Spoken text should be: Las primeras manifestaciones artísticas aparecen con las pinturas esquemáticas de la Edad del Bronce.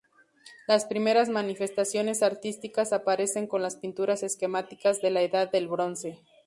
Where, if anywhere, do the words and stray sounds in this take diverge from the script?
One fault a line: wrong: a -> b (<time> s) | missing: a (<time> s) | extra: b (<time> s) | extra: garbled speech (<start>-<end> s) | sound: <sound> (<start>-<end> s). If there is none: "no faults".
no faults